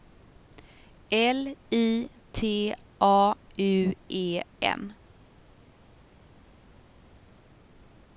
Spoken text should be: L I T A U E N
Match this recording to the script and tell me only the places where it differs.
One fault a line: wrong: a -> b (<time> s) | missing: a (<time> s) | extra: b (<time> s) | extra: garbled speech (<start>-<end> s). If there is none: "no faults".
no faults